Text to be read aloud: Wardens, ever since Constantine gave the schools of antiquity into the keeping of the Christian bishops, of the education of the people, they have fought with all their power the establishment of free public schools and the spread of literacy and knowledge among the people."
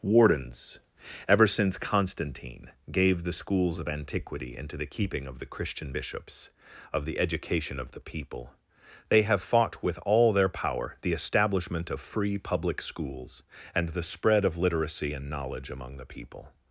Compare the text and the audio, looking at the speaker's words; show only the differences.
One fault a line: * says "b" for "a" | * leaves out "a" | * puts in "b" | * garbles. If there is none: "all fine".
all fine